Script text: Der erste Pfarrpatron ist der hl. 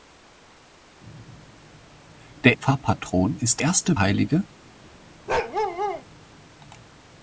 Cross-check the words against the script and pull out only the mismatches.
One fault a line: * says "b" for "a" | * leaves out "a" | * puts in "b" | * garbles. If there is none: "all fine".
* leaves out "erste"
* says "erste" for "der"